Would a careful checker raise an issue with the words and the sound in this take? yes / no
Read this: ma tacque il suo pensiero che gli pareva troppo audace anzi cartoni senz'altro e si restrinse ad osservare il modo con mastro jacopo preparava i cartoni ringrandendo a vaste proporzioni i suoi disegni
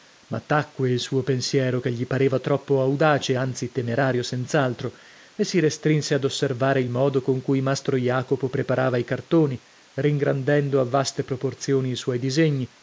yes